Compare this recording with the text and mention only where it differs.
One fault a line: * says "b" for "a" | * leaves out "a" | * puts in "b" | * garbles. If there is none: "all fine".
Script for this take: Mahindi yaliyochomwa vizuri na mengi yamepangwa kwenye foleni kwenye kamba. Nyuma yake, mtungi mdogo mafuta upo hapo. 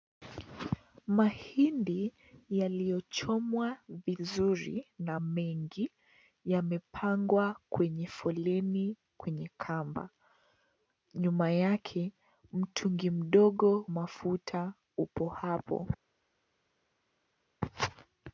all fine